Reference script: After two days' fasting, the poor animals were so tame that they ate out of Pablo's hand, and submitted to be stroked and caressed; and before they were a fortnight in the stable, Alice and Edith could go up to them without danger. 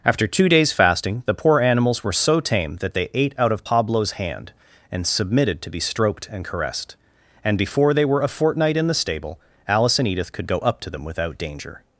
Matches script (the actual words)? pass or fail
pass